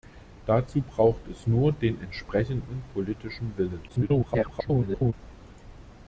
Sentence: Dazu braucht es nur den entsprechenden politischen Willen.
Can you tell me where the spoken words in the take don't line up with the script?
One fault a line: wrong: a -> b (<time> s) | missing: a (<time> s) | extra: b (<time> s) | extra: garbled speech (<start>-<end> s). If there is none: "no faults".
extra: garbled speech (3.9-5.1 s)